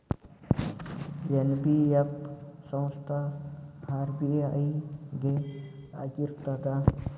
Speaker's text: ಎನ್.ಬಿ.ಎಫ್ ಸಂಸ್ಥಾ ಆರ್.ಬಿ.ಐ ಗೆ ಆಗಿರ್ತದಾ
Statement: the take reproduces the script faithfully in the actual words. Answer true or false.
true